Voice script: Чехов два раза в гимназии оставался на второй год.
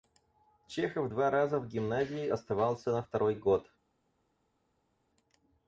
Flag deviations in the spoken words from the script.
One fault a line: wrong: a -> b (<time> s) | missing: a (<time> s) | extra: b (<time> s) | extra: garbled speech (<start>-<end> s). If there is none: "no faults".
no faults